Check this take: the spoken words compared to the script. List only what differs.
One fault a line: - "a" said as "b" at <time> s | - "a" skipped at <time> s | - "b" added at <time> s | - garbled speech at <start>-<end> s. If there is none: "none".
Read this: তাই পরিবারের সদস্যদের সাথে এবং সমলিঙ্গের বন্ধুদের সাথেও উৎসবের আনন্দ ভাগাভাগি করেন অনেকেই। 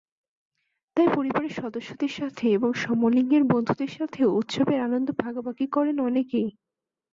none